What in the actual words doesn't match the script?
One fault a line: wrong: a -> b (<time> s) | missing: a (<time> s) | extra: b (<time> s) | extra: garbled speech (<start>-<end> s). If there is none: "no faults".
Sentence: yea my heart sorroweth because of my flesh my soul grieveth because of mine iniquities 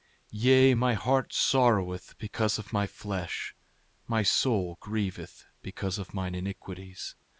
no faults